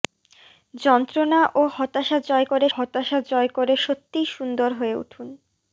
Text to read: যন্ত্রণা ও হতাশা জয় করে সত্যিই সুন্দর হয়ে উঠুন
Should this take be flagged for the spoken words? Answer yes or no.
yes